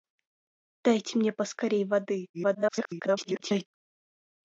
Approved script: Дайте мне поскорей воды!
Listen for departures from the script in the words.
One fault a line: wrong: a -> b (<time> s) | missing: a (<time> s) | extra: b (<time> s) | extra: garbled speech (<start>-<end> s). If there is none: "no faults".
extra: garbled speech (2.3-3.7 s)